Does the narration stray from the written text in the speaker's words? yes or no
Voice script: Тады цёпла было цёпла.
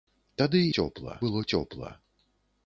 no